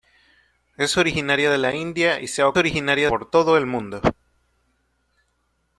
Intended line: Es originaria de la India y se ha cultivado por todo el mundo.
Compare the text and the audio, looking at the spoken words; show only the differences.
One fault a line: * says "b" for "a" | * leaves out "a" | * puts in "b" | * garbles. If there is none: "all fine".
* says "originaria" for "cultivado"